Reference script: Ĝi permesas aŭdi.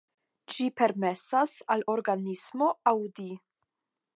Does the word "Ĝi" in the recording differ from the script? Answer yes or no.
no